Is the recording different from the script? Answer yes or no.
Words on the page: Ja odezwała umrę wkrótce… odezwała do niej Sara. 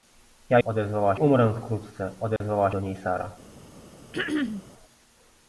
no